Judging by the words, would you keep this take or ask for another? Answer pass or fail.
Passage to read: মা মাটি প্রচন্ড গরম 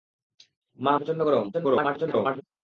fail